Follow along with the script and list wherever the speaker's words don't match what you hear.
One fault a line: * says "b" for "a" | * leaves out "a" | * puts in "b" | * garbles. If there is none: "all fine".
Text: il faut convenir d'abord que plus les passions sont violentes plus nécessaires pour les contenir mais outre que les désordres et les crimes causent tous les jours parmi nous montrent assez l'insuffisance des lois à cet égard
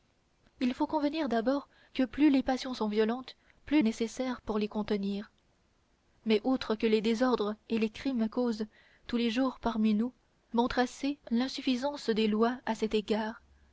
all fine